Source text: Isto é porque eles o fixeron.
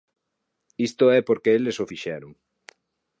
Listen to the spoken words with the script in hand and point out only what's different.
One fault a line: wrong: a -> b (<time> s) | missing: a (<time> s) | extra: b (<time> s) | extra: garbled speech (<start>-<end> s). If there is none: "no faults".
no faults